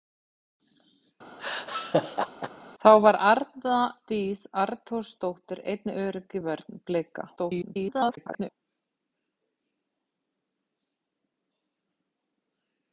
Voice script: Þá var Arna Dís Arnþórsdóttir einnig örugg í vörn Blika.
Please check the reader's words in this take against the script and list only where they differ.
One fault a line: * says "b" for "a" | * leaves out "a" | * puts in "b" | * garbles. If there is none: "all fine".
* garbles